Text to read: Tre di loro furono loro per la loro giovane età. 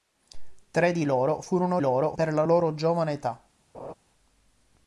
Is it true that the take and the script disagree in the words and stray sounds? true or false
true